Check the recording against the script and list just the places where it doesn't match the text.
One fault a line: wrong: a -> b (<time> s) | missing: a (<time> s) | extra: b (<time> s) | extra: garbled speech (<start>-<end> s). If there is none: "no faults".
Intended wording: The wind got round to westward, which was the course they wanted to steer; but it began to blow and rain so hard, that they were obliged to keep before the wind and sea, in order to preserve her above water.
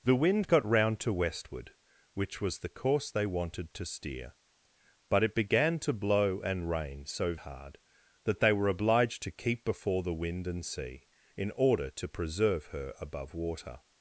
no faults